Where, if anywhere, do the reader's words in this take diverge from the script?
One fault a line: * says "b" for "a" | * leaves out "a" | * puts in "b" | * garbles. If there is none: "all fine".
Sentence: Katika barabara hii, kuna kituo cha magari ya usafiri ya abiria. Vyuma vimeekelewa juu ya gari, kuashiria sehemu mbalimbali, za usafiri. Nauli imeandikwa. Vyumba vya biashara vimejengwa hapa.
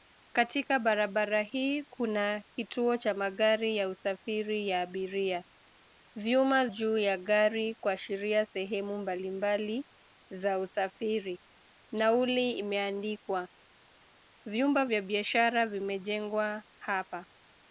* leaves out "vimeekelewa"